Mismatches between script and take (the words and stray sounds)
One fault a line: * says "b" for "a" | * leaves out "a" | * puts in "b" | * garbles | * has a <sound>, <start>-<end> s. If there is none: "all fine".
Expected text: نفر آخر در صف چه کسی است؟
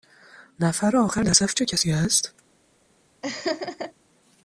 * has a laugh, 3.2-3.9 s